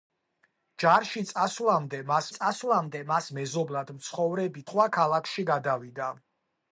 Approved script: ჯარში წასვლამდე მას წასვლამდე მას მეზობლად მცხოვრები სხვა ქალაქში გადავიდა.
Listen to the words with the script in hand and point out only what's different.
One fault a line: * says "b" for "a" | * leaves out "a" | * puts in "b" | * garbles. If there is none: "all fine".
all fine